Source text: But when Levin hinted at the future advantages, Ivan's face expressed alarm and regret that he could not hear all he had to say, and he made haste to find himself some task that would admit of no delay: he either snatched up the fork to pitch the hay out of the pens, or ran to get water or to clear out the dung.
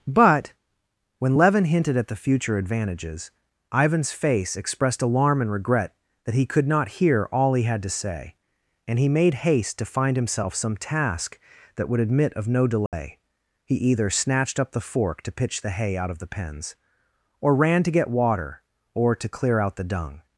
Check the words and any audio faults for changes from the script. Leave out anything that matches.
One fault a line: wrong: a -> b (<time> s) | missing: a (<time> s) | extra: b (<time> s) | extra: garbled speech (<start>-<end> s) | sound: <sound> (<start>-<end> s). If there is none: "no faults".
sound: dropout (12.9-12.9 s)